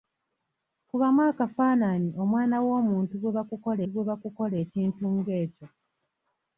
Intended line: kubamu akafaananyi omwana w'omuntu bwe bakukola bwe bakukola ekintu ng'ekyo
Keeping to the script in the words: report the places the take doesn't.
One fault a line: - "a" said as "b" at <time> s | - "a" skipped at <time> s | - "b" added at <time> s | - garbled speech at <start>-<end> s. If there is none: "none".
none